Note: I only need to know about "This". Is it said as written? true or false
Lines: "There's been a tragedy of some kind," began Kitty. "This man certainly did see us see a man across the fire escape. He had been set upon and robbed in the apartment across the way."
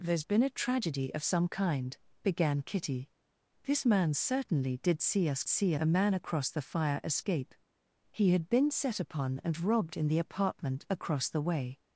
true